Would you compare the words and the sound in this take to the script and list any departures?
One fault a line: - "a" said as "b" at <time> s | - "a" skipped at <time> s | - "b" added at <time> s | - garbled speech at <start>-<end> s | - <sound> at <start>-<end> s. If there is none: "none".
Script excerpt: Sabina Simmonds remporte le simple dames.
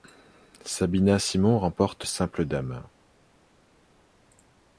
- "le" skipped at 2.1 s